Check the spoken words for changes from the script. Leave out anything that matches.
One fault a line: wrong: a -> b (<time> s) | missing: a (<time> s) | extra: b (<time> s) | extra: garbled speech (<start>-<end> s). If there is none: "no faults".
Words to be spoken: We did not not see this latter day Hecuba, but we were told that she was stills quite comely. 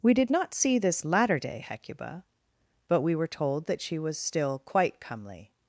missing: not (0.5 s)
wrong: stills -> still (4.2 s)